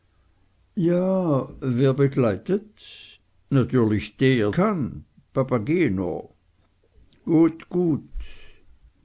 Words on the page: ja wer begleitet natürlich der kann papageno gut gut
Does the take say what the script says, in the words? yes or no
yes